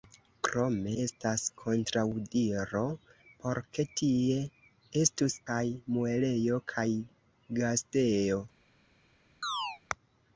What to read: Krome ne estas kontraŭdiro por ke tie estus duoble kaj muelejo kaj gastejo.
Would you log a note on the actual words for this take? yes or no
yes